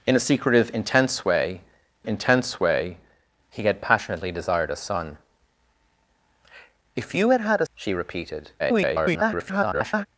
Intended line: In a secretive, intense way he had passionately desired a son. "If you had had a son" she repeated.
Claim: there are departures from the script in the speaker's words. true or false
true